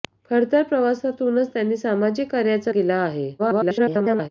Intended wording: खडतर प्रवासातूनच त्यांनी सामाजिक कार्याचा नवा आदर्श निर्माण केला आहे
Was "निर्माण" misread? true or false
true